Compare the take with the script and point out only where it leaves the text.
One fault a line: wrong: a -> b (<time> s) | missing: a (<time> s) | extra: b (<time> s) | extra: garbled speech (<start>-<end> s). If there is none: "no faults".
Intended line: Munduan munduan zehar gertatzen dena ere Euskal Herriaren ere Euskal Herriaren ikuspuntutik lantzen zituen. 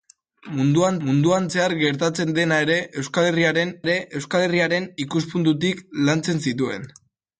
no faults